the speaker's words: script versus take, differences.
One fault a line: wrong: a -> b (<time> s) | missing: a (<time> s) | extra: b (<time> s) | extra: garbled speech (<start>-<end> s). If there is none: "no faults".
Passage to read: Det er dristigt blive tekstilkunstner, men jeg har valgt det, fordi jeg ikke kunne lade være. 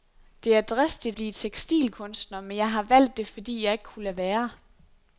no faults